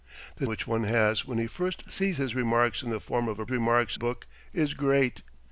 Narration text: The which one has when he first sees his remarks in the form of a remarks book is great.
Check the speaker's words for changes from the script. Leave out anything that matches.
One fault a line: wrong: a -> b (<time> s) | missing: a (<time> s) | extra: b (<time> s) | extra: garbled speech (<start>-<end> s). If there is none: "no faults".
no faults